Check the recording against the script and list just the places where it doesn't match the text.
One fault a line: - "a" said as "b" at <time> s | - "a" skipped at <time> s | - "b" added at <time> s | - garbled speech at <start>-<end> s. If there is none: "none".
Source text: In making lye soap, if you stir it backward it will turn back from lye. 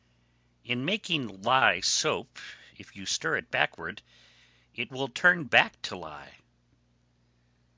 - "from" said as "to" at 5.8 s